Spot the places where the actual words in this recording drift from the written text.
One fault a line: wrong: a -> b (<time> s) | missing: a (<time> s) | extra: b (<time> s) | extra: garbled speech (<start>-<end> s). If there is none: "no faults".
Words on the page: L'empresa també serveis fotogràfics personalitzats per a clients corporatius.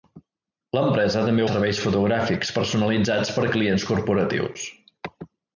no faults